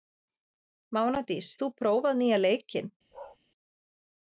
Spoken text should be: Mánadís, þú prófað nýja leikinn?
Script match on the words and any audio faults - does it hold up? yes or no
no